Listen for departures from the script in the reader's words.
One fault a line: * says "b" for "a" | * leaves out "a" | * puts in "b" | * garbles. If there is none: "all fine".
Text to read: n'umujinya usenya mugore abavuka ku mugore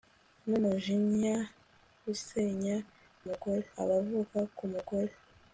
all fine